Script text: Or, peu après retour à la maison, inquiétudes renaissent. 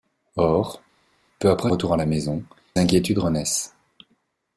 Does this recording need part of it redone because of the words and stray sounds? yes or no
no